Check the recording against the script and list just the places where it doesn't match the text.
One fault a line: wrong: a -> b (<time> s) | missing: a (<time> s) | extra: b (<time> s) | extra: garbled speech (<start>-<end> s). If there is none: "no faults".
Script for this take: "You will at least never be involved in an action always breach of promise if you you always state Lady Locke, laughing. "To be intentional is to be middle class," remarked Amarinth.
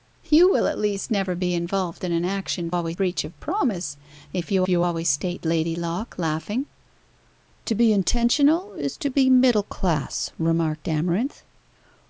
no faults